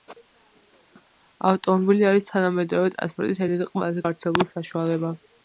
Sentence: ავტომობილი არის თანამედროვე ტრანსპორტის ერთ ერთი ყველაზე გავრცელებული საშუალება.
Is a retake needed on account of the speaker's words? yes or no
no